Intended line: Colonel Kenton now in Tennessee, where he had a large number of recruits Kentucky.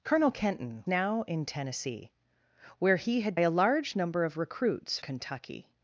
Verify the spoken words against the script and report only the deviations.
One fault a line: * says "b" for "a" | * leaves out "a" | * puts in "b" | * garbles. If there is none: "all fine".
all fine